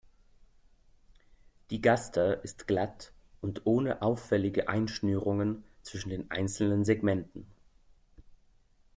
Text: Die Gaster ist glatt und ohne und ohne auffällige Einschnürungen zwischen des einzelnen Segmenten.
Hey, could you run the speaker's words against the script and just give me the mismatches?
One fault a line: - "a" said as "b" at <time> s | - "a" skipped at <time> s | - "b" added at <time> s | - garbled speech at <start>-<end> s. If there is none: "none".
- "und ohne" skipped at 4.0 s
- "des" said as "den" at 6.1 s